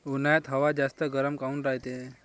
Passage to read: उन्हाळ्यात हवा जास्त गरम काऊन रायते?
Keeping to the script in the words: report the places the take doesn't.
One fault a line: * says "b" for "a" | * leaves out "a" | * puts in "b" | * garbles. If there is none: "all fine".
all fine